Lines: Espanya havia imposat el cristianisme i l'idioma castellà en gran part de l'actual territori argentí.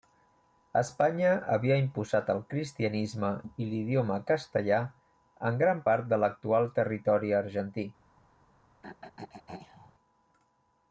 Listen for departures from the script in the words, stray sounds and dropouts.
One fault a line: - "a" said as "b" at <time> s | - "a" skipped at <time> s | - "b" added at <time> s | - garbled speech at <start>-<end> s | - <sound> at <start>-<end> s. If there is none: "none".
- throat clearing at 8.8-9.9 s